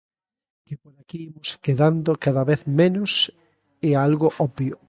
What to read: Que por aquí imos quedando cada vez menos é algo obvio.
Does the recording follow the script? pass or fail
pass